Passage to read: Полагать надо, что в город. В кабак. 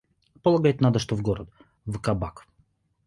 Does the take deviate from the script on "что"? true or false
false